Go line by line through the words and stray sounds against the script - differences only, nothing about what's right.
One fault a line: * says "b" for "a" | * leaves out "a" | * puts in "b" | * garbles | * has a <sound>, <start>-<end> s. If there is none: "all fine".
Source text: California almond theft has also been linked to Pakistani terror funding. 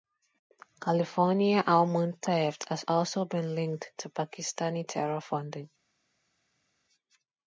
all fine